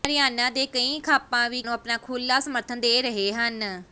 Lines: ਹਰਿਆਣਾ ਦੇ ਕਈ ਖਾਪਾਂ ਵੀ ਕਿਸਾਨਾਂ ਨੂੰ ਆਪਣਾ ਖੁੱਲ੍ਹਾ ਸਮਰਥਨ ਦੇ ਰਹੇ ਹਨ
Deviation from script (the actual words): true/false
true